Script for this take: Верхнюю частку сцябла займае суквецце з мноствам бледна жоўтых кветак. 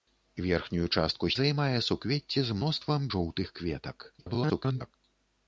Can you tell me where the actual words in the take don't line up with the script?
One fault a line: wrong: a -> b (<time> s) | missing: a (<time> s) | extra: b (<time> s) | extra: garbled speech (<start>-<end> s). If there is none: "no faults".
missing: сцябла (1.3 s)
missing: бледна (3.1 s)
extra: garbled speech (4.2-4.9 s)